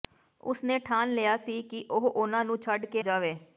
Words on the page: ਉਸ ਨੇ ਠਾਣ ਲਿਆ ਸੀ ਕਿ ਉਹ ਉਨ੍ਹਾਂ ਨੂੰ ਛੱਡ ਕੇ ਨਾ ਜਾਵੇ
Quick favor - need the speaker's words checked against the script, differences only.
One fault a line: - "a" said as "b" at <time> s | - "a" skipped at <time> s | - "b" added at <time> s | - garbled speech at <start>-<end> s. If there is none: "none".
- "ਨਾ" skipped at 3.0 s